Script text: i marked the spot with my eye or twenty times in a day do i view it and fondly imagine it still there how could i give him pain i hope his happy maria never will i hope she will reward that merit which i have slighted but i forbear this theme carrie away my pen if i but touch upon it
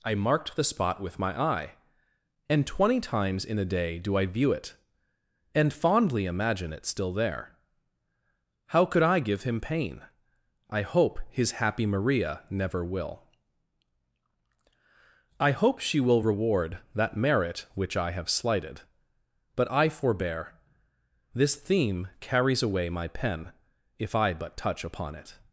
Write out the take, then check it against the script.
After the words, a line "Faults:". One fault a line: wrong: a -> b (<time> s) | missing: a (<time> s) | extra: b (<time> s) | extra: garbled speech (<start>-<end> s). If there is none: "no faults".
i marked the spot with my eye and twenty times in a day do i view it and fondly imagine it still there how could i give him pain i hope his happy maria never will i hope she will reward that merit which i have slighted but i forbear this theme carries away my pen if i but touch upon it
Faults:
wrong: or -> and (2.5 s)
wrong: carrie -> carries (22.2 s)